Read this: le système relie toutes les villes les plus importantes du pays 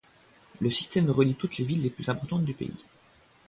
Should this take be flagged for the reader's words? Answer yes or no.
no